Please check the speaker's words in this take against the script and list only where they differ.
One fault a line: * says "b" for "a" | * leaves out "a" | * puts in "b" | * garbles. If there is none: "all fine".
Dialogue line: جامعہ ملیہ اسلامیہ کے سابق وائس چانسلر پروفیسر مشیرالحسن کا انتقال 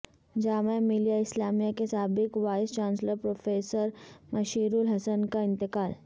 all fine